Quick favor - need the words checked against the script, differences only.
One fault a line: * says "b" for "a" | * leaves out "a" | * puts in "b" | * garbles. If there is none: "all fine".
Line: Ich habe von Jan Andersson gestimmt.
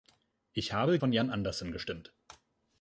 all fine